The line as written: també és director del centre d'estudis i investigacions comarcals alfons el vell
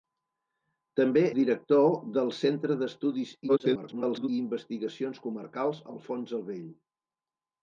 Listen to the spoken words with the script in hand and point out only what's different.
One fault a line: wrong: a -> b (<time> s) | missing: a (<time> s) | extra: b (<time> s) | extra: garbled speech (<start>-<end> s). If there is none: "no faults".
missing: és (1.2 s)
extra: garbled speech (3.5-4.3 s)